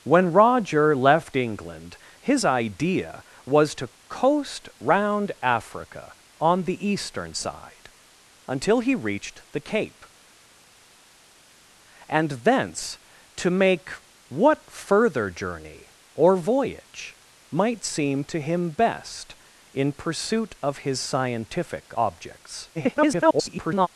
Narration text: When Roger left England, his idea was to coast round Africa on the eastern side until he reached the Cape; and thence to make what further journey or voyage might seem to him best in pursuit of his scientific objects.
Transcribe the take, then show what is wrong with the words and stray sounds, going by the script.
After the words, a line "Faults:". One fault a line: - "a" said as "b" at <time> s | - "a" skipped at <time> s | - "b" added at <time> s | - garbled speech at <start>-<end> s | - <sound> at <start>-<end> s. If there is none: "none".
When Roger left England, his idea was to coast round Africa on the eastern side until he reached the Cape; and thence to make what further journey or voyage might seem to him best in pursuit of his scientific objects. [garbled]
Faults:
- garbled speech at 22.7-23.9 s